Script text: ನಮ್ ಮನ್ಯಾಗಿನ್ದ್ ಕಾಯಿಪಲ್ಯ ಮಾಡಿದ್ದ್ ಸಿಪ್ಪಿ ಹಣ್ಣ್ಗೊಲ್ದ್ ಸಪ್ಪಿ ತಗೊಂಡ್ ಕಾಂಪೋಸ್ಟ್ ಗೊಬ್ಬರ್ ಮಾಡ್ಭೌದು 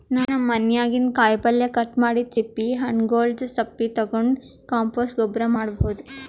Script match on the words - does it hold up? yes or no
no